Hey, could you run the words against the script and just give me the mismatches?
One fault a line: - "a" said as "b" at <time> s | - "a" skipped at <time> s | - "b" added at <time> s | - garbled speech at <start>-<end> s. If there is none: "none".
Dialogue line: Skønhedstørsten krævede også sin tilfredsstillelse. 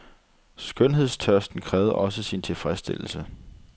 none